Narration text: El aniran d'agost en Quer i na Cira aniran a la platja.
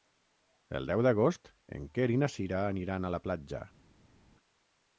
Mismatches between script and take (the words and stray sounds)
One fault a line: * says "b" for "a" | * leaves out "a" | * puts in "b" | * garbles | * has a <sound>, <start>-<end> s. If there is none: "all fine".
* says "deu" for "aniran"